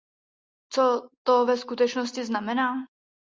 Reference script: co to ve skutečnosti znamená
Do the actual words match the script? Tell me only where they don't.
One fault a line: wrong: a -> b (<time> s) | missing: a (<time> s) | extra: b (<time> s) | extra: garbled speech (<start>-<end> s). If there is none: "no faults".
no faults